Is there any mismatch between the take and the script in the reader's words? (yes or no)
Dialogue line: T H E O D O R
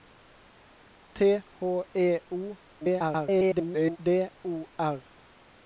yes